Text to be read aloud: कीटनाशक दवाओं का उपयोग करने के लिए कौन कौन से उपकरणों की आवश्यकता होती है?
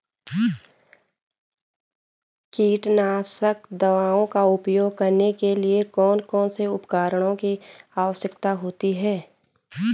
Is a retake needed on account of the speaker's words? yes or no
no